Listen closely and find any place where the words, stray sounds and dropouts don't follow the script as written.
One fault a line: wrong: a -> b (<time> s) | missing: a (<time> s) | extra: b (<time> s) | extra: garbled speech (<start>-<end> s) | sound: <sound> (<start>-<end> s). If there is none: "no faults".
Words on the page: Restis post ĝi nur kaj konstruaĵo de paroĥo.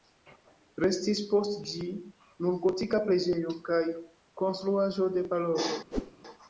extra: gotika preĝejo (2.6 s)
sound: whoosh (5.9-6.1 s)